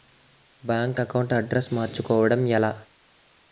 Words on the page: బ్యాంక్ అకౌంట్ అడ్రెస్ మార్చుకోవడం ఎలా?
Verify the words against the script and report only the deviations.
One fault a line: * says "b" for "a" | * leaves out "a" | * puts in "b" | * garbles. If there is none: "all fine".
all fine